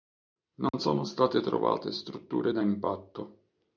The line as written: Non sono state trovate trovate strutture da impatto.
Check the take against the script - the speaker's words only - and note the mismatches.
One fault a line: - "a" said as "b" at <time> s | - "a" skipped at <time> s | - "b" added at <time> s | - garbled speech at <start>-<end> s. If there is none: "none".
- "trovate" skipped at 1.9 s